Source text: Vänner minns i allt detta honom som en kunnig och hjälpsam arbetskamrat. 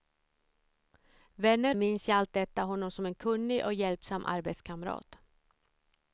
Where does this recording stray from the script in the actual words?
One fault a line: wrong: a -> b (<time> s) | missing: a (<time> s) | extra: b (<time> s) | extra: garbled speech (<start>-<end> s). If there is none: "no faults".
no faults